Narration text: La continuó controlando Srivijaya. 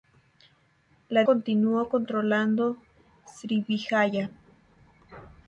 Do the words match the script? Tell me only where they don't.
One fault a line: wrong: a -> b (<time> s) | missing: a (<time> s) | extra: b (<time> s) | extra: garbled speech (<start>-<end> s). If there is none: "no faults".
no faults